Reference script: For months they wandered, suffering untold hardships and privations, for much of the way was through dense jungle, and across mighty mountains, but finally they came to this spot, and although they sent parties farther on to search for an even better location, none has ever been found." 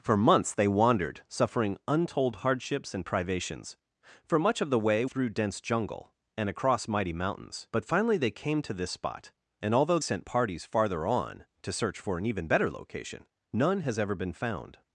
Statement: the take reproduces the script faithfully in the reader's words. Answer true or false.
false